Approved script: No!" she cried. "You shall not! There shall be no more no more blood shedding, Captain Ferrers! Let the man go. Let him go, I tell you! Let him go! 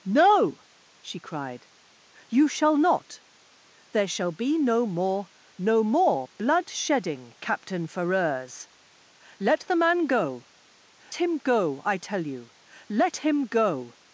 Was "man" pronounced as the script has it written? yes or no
yes